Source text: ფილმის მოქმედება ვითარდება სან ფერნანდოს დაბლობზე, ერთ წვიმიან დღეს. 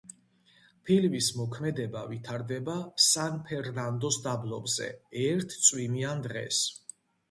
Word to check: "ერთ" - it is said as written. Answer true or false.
true